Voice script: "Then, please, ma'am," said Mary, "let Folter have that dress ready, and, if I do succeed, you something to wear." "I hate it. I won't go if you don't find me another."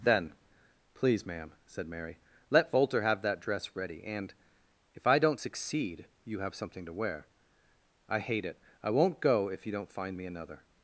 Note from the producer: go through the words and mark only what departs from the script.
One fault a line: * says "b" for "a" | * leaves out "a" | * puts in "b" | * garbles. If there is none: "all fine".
* says "don't" for "do"
* puts in "have"